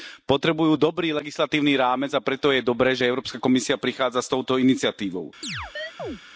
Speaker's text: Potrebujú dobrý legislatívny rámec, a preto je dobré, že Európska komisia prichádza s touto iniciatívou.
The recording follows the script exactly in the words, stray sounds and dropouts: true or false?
false